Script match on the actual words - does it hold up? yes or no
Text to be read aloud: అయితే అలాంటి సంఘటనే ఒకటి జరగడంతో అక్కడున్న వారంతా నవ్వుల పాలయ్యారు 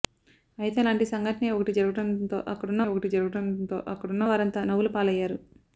no